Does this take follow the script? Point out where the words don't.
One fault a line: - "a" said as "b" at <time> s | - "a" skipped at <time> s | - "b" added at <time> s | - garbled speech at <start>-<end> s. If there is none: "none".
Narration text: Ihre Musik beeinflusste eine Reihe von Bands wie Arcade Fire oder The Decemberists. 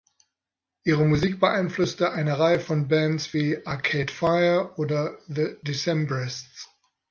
none